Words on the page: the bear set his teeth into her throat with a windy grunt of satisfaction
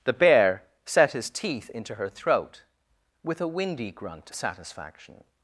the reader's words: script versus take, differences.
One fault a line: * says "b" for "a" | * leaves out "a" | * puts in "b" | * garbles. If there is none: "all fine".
* leaves out "of"